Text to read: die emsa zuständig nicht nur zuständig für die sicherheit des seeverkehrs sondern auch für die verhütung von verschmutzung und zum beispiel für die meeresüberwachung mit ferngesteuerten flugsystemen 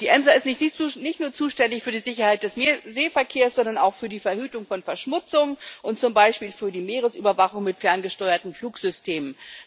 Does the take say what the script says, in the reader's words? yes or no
no